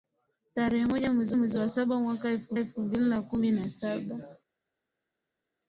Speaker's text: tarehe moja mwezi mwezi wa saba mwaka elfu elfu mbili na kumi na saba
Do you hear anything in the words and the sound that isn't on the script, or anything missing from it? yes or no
no